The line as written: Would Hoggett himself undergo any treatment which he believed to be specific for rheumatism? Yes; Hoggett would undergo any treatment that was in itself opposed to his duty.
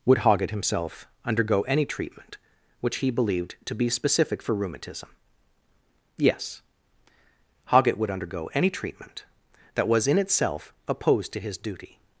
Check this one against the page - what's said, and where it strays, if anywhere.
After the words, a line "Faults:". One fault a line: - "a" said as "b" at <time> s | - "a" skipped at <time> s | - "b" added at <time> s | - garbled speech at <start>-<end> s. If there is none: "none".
Would Hoggett himself undergo any treatment which he believed to be specific for rheumatism? Yes; Hoggett would undergo any treatment that was in itself opposed to his duty.
Faults:
none